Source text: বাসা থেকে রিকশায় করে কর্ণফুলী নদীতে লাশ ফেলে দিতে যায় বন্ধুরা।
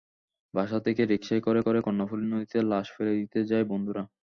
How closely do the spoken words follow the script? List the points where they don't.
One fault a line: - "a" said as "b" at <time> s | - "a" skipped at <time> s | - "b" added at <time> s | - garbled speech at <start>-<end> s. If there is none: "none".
- "করে" added at 1.6 s